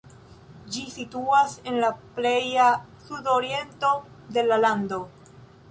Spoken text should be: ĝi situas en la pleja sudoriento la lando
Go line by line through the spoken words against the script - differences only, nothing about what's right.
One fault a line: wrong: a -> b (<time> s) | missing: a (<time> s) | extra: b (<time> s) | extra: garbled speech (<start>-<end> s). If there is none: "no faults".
extra: de (4.4 s)